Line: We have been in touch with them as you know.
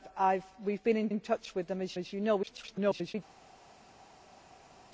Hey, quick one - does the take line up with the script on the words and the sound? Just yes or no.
no